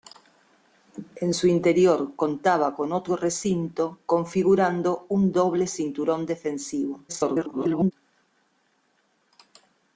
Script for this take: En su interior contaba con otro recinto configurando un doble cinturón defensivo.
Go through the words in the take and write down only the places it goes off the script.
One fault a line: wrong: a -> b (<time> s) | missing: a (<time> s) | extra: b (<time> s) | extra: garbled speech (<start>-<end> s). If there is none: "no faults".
extra: garbled speech (7.1-7.9 s)